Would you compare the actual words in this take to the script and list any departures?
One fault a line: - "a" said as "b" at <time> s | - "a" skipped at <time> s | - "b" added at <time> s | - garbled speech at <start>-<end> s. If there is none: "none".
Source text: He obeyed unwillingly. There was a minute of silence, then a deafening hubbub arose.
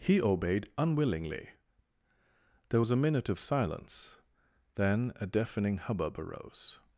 none